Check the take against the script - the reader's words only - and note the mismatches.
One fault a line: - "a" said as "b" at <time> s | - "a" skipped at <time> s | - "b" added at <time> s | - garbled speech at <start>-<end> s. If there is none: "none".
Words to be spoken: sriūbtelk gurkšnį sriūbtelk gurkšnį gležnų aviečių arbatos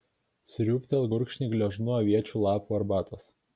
- "sriūbtelk gurkšnį" skipped at 1.5 s
- "lapų" added at 2.5 s